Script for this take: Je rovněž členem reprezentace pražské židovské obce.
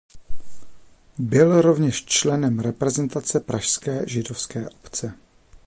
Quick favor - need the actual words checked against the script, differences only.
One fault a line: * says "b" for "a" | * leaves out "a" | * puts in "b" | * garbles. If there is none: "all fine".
* says "Byl" for "Je"